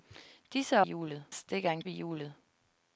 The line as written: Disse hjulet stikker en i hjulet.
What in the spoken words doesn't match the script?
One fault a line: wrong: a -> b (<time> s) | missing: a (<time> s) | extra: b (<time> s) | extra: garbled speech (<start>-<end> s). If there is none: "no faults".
no faults